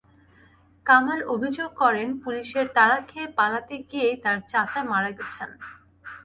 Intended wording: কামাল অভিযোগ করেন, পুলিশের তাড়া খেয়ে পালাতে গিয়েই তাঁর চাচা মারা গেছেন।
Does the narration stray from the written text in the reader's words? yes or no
no